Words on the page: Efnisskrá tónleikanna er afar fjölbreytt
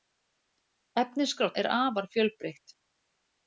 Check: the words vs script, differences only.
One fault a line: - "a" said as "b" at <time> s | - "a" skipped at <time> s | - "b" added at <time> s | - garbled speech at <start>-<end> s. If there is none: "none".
- "tónleikanna" skipped at 1.5 s